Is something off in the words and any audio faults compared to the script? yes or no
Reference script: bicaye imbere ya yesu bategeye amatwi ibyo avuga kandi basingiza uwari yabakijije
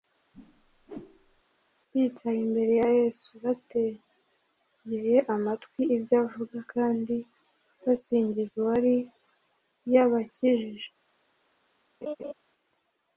yes